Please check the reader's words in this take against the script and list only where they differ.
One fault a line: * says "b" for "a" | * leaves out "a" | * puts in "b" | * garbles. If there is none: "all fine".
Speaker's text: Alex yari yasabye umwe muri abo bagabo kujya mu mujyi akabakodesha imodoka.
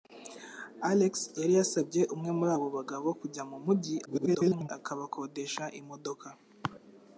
* garbles